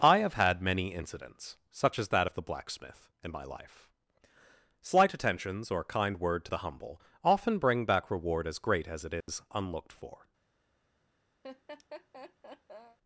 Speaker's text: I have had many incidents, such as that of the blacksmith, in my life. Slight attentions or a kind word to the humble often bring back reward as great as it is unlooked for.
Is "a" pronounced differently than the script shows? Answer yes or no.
yes